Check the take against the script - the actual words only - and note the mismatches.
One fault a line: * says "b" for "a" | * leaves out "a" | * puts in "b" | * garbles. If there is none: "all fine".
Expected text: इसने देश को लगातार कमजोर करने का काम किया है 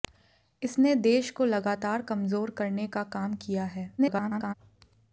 * garbles